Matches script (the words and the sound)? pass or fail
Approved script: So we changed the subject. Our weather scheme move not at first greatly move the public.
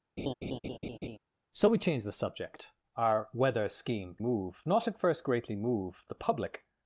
fail